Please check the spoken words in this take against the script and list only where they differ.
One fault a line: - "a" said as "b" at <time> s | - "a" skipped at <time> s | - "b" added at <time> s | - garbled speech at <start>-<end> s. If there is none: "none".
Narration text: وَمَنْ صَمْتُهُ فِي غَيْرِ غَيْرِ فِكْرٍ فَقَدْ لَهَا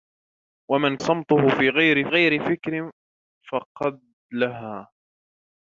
none